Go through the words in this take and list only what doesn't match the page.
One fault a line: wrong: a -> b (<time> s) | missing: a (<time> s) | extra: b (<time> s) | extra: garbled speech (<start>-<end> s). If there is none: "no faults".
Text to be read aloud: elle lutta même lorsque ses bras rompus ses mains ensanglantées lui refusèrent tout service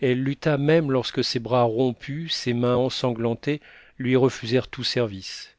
no faults